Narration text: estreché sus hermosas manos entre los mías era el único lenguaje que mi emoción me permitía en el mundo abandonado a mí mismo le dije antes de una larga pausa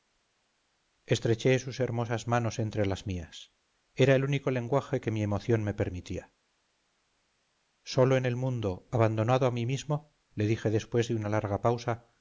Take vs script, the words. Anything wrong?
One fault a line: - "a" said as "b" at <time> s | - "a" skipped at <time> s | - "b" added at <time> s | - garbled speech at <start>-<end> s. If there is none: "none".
- "los" said as "las" at 2.9 s
- "solo" added at 7.8 s
- "antes" said as "después" at 10.7 s